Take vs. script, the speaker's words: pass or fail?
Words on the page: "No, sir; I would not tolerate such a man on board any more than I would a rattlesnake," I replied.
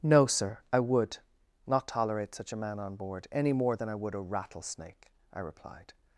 pass